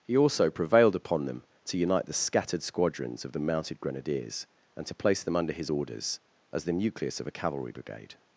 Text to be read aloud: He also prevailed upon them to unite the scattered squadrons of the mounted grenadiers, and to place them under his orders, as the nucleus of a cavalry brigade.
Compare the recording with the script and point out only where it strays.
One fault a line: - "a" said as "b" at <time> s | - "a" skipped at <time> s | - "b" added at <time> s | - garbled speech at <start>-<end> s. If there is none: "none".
none